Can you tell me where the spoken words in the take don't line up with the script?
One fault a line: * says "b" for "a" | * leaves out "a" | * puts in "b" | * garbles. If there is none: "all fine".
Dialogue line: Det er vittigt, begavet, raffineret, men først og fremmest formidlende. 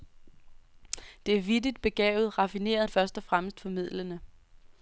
* leaves out "men"